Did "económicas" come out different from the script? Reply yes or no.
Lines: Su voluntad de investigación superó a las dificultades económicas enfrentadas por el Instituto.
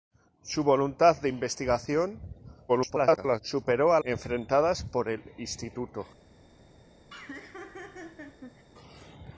yes